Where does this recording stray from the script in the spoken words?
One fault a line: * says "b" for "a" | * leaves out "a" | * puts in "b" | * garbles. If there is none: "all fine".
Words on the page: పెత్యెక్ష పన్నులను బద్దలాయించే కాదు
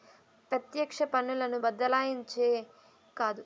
all fine